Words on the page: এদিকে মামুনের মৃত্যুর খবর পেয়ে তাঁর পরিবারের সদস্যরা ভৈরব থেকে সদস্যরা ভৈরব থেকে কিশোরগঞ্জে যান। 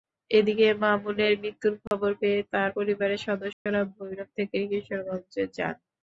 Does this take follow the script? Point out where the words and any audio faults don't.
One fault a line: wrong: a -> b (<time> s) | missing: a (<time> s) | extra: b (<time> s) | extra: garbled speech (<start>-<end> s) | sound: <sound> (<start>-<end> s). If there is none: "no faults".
sound: dropout (1.9-1.9 s)
sound: dropout (3.5-3.7 s)
missing: সদস্যরা ভৈরব থেকে (4.6 s)